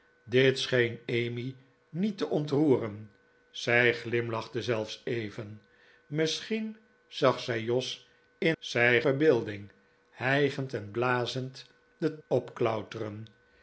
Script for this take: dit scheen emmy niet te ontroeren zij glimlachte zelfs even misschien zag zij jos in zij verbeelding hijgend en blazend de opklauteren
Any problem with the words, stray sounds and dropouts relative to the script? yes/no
no